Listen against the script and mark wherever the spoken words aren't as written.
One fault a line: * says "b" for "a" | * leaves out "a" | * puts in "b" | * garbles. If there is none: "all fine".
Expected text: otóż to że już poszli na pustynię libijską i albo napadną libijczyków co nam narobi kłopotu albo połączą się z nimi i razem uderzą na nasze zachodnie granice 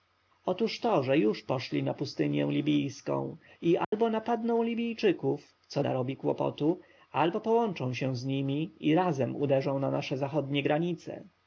* leaves out "nam"